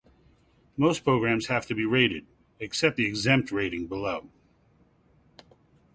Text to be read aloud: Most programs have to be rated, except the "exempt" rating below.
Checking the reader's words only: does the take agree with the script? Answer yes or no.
yes